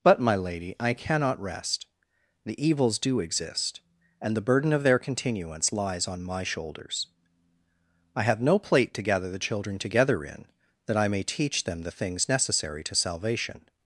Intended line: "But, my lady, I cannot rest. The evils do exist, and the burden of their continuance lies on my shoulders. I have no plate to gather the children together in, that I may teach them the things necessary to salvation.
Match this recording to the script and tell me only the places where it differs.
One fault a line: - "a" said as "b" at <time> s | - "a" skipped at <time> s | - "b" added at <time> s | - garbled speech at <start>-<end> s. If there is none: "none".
none